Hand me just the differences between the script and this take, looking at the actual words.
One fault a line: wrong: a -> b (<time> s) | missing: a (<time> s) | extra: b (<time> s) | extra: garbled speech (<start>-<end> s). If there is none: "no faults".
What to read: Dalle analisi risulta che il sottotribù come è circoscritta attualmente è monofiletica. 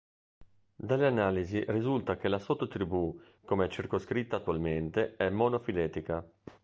wrong: il -> la (2.3 s)